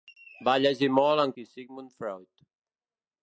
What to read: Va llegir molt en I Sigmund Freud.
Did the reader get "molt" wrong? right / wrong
right